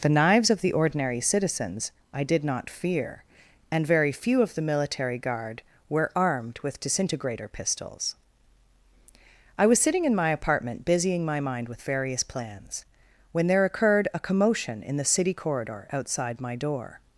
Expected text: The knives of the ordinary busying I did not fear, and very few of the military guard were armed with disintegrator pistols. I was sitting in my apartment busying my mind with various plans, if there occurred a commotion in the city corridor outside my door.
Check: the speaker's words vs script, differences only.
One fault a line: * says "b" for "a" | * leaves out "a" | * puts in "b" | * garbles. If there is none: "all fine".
* says "citizens" for "busying"
* says "when" for "if"